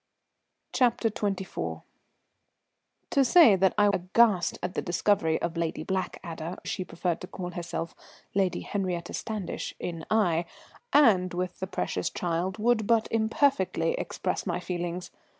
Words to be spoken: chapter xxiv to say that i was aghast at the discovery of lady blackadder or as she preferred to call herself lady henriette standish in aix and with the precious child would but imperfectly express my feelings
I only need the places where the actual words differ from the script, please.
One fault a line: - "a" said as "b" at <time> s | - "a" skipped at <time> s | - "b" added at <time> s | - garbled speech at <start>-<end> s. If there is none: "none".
- "was" skipped at 3.9 s
- "or" skipped at 6.6 s